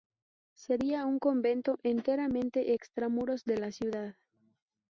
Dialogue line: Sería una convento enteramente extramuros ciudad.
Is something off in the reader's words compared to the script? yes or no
yes